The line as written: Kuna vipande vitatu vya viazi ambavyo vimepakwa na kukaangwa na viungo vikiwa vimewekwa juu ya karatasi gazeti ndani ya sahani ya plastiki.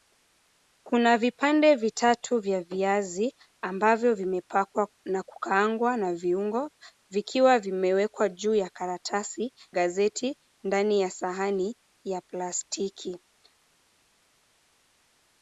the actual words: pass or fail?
pass